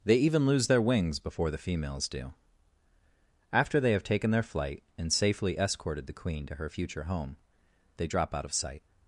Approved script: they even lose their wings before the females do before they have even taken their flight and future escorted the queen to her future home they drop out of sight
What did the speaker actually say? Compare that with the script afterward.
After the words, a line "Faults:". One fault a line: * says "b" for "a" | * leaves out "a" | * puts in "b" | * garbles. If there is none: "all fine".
they even lose their wings before the females do after they have taken their flight and safely escorted the queen to her future home they drop out of sight
Faults:
* says "after" for "before"
* leaves out "even"
* says "safely" for "future"